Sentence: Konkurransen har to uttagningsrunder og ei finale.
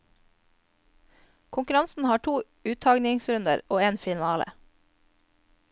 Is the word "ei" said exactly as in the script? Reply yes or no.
no